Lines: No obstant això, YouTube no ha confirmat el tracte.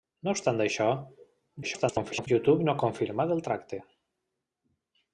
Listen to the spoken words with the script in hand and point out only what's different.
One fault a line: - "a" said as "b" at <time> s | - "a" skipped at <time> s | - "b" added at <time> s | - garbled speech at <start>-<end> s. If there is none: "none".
- garbled speech at 1.6-2.3 s